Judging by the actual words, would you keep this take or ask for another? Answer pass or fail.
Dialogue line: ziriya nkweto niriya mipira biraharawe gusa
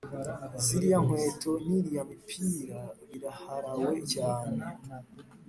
fail